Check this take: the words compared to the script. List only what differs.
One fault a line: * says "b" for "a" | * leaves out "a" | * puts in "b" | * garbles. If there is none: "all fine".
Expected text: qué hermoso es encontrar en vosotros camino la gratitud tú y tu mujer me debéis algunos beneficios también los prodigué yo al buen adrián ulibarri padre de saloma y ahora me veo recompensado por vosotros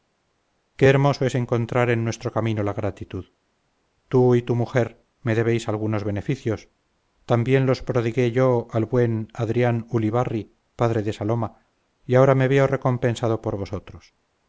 * says "nuestro" for "vosotros"